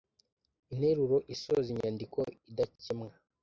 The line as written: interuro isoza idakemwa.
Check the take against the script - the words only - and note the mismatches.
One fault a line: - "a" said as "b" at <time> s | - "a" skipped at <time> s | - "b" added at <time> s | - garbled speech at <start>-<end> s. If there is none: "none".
- "inyandiko" added at 1.7 s